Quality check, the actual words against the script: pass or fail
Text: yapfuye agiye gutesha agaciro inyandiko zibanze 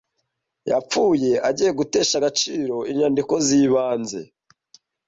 pass